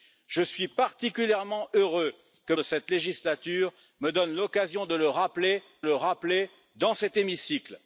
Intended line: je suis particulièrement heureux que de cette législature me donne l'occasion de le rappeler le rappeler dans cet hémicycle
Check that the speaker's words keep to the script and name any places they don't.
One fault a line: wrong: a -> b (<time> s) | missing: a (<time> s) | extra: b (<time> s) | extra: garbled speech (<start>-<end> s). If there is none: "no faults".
no faults